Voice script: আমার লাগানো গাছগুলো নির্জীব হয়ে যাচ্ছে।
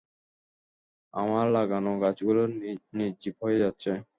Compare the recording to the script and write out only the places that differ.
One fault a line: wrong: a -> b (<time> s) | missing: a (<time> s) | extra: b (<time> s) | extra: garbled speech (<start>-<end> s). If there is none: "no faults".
no faults